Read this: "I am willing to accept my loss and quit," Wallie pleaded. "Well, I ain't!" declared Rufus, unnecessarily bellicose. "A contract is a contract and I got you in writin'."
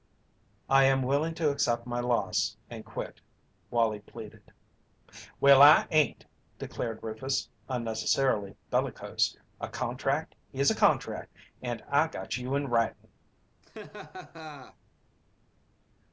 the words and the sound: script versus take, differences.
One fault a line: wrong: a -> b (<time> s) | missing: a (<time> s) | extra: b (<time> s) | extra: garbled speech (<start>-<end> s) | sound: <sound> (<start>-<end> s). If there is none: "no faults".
sound: laugh (13.6-14.8 s)